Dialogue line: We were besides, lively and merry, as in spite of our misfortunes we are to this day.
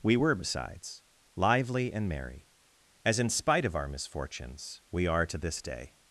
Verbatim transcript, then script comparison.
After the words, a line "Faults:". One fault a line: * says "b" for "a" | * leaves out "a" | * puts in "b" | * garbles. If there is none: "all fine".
We were besides, lively and merry, as in spite of our misfortunes we are to this day.
Faults:
all fine